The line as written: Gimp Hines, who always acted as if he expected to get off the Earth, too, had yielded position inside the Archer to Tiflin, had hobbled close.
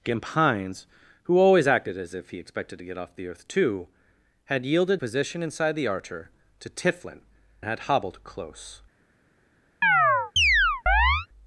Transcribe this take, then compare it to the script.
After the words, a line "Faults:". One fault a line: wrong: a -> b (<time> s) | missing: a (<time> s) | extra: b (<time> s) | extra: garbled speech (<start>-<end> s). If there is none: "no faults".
Gimp Hines, who always acted as if he expected to get off the Earth, too, had yielded position inside the Archer to Tiflin, had hobbled close.
Faults:
no faults